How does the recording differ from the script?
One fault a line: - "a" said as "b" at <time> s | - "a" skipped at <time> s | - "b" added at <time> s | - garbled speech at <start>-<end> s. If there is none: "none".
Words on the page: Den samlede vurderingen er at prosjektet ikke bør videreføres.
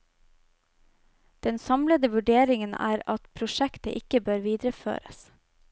none